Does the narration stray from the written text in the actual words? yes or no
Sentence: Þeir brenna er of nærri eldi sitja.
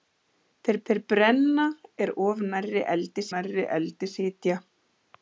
yes